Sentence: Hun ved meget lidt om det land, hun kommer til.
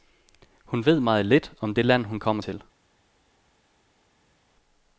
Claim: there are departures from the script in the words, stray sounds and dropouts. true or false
false